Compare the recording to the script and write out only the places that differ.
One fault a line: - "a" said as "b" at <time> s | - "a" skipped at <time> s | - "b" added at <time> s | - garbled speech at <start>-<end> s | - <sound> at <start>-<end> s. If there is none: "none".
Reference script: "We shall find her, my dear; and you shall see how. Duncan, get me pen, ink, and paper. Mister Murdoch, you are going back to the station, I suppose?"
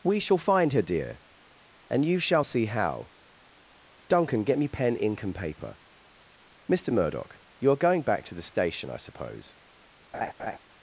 - "my" skipped at 0.8 s
- laugh at 10.1-10.6 s